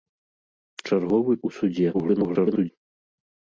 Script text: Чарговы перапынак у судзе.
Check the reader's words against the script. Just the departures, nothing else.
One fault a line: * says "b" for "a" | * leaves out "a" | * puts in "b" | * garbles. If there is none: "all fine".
* leaves out "перапынак"
* garbles